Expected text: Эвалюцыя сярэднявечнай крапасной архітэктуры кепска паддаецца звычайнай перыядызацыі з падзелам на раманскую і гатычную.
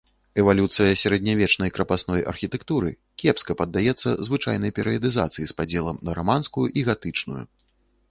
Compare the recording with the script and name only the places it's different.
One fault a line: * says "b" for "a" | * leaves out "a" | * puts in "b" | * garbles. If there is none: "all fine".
all fine